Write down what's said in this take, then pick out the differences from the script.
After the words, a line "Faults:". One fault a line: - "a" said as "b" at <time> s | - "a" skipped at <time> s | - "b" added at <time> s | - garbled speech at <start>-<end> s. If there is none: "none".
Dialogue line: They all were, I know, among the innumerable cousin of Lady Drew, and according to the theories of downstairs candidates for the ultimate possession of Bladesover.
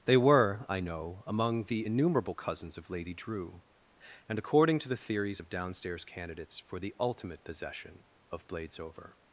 They were, I know, among the innumerable cousins of Lady Drew, and according to the theories of downstairs candidates for the ultimate possession of Bladesover.
Faults:
- "all" skipped at 0.2 s
- "cousin" said as "cousins" at 2.3 s